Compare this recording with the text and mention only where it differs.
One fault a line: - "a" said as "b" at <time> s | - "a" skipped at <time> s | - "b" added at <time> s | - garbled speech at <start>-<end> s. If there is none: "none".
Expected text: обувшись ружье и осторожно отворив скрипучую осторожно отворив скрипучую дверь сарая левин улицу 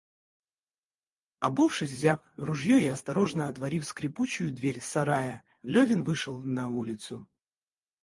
- "взяв" added at 1.9 s
- "осторожно отворив скрипучую" skipped at 4.5 s
- "вышел на" added at 6.0 s